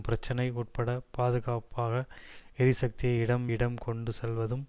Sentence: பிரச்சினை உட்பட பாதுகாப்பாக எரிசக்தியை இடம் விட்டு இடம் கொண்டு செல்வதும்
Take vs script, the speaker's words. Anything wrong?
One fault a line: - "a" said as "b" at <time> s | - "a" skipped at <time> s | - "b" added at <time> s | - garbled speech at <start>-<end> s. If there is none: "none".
- "விட்டு" skipped at 3.5 s